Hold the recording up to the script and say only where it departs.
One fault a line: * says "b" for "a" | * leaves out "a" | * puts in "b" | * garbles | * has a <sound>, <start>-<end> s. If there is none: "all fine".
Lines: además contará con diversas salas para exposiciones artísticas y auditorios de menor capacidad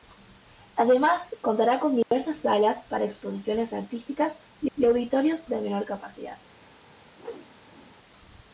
* has a dropout, 2.0-2.1 s
* puts in "y"
* has a whoosh, 7.1-8.0 s